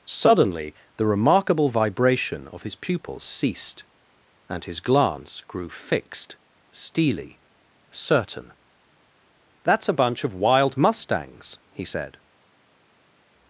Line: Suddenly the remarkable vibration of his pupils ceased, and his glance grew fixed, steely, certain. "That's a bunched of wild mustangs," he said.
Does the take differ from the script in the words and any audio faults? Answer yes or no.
yes